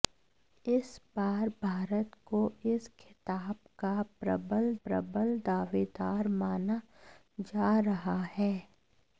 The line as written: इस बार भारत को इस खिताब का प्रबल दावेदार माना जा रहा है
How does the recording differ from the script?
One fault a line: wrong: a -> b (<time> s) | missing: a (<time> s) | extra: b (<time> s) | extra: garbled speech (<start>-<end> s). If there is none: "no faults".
extra: प्रबल (4.8 s)